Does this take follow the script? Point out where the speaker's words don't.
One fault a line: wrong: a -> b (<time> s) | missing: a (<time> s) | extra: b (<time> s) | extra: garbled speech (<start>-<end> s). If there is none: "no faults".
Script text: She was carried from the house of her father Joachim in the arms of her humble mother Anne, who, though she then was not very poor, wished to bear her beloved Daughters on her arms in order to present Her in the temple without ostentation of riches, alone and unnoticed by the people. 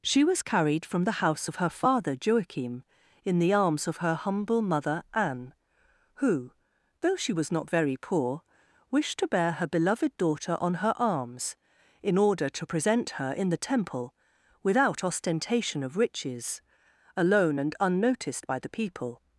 missing: then (7.3 s)
wrong: Daughters -> Daughter (10.2 s)